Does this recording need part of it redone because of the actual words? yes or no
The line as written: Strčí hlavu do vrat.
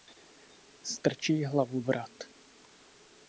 yes